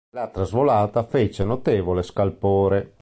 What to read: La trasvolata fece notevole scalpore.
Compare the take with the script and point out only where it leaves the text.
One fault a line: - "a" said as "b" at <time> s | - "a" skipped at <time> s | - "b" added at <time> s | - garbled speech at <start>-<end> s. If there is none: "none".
none